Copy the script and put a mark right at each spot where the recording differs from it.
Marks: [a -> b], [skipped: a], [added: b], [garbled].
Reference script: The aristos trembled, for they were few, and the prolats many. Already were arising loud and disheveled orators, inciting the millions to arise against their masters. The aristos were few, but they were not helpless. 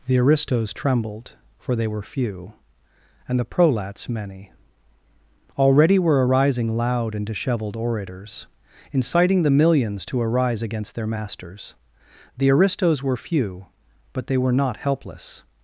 The aristos trembled, for they were few, and the prolats many. Already were arising loud and disheveled orators, inciting the millions to arise against their masters. The aristos were few, but they were not helpless.